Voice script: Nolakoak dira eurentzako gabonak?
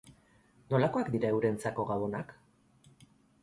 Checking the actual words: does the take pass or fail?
pass